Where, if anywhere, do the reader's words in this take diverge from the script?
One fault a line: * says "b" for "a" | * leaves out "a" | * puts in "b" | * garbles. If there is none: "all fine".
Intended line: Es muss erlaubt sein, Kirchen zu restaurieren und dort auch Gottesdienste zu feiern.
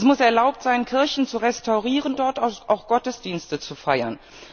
* leaves out "und"